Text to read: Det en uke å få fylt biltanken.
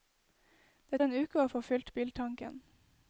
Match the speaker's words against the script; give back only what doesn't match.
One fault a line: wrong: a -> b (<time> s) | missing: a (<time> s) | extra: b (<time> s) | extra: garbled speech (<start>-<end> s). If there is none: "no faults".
no faults